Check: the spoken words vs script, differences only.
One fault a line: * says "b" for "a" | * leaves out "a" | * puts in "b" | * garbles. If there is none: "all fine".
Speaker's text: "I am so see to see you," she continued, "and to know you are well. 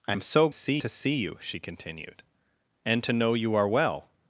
all fine